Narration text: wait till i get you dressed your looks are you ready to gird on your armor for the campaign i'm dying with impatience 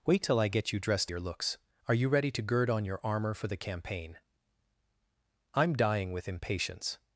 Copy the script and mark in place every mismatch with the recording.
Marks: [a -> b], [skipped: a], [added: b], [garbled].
wait till i get you dressed your looks are you ready to gird on your armor for the campaign i'm dying with impatience